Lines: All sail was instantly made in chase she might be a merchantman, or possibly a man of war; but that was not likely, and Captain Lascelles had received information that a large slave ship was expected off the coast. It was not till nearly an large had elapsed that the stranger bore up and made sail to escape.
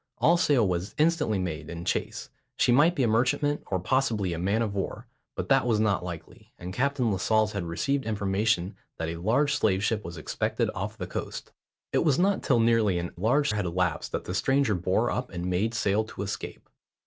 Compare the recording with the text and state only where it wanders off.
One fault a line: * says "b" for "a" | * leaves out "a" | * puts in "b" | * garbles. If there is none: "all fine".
all fine